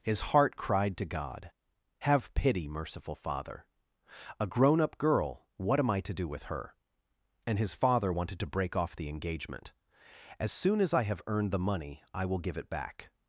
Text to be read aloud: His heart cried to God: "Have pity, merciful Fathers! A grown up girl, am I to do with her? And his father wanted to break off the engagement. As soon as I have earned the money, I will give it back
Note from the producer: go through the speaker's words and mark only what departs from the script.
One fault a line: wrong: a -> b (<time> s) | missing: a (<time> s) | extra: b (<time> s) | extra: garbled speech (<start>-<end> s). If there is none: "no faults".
wrong: Fathers -> Father (3.1 s)
extra: what (5.6 s)